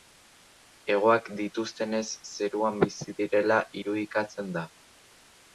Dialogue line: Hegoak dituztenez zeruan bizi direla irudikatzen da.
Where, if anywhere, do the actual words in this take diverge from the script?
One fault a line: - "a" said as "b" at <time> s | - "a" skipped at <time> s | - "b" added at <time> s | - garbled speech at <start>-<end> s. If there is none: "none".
none